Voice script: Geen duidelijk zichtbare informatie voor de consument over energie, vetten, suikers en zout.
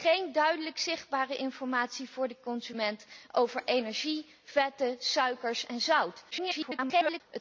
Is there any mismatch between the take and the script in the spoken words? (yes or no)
yes